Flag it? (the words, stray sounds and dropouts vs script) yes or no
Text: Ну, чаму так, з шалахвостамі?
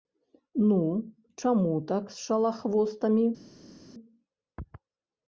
no